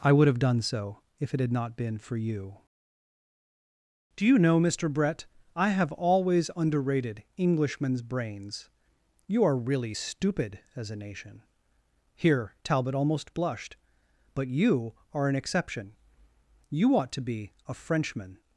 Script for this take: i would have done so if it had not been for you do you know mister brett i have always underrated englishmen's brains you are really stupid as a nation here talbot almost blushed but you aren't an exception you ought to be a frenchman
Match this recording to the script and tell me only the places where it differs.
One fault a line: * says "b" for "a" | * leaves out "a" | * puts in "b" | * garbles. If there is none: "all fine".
* says "are" for "aren't"